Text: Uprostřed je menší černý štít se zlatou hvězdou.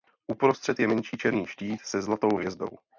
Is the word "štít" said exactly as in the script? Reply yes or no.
yes